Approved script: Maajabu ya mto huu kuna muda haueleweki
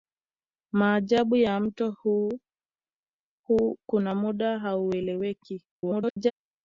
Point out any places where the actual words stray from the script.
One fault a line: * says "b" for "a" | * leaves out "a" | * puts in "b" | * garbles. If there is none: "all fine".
* garbles